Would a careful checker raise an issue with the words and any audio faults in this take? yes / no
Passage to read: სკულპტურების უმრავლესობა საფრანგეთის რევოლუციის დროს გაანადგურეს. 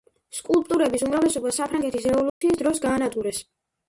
yes